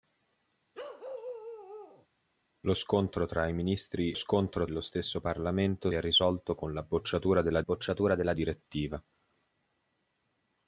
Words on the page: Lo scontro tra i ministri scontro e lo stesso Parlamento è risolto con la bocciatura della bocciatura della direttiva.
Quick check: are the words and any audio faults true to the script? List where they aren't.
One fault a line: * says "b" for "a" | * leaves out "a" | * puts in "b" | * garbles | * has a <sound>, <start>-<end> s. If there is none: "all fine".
* has a bark, 0.7-2.1 s